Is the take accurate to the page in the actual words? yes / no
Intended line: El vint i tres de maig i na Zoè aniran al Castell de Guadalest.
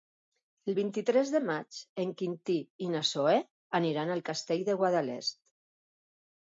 no